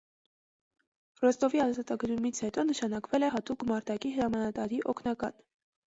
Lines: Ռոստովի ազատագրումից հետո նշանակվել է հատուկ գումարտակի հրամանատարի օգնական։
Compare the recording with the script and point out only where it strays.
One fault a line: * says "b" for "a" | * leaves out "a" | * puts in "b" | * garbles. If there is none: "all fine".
all fine